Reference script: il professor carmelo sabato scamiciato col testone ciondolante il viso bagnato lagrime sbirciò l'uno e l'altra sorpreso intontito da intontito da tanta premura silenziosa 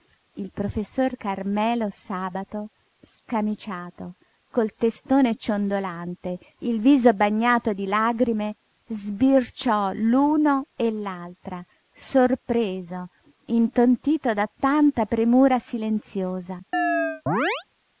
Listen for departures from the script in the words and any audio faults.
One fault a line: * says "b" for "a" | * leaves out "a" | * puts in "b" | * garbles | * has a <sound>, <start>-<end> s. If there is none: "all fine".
* puts in "di"
* leaves out "intontito da"
* has a chirp, 16.7-17.6 s